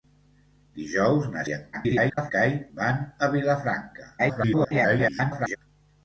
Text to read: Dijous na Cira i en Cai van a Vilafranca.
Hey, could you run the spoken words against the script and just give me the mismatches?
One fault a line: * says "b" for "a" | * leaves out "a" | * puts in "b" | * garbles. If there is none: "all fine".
* leaves out "Cira"
* garbles
* garbles